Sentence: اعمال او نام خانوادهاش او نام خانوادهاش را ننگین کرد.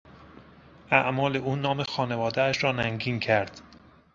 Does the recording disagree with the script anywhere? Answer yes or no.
yes